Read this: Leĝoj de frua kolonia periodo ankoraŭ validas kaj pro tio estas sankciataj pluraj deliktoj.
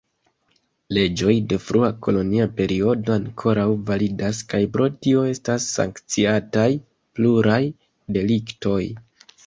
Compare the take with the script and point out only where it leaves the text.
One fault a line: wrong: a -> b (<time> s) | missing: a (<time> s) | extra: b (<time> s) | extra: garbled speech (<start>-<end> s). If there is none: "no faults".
no faults